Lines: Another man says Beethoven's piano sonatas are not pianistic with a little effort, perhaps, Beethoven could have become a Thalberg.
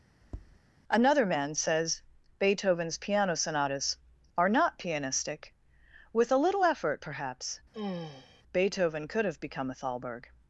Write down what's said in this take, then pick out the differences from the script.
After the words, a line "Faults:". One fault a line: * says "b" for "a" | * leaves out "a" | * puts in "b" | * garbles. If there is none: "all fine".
Another man says Beethoven's piano sonatas are not pianistic with a little effort, perhaps, Beethoven could have become a Thalberg.
Faults:
all fine